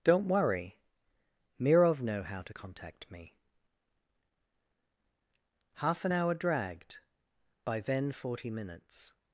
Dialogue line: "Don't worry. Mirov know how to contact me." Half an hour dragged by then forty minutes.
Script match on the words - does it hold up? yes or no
yes